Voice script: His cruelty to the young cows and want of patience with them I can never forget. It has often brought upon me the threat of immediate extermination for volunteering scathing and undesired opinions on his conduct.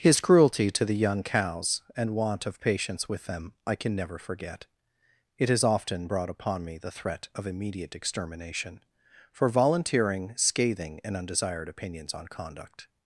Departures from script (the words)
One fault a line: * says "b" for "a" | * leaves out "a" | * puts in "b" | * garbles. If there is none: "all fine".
* leaves out "his"